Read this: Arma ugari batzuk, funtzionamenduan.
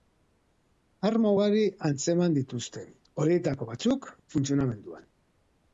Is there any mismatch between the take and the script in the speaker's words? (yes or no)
yes